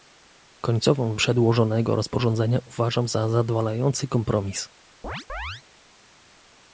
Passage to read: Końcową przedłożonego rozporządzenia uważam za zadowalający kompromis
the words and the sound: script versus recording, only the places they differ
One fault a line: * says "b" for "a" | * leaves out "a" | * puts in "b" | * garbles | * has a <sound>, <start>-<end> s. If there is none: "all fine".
* has a chirp, 5.0-5.6 s